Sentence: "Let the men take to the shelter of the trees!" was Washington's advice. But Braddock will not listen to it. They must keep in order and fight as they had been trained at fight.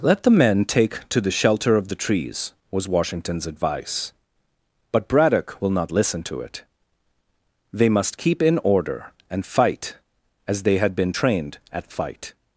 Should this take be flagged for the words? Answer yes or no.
no